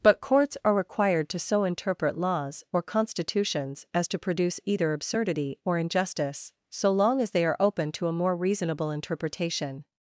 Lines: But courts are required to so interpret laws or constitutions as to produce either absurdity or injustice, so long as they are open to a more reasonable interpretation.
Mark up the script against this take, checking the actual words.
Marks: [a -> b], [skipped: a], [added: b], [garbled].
But courts are required to so interpret laws or constitutions as to produce either absurdity or injustice, so long as they are open to a more reasonable interpretation.